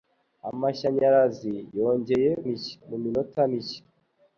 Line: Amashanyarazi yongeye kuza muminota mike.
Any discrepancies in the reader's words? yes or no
yes